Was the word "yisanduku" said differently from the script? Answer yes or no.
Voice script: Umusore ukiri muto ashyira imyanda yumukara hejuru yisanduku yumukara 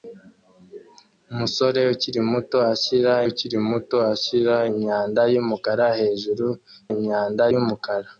yes